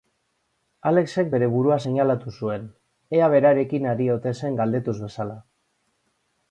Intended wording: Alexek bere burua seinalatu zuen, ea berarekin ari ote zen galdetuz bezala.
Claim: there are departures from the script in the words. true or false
false